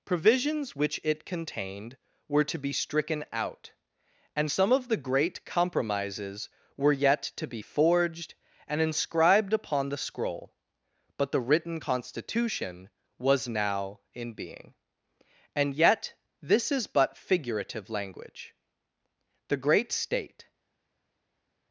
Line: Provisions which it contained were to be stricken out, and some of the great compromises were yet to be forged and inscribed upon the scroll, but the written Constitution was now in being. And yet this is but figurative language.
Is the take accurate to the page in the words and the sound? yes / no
no